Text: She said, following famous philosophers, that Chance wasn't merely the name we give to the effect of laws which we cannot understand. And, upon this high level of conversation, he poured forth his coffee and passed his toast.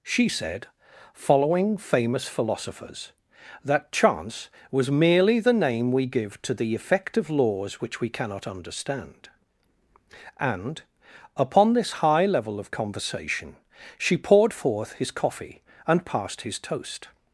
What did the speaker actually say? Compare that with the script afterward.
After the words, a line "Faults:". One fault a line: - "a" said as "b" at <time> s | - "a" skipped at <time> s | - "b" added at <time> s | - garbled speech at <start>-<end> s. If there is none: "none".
She said, following famous philosophers, that Chance was merely the name we give to the effect of laws which we cannot understand. And, upon this high level of conversation, she poured forth his coffee and passed his toast.
Faults:
- "wasn't" said as "was" at 4.7 s
- "he" said as "she" at 14.0 s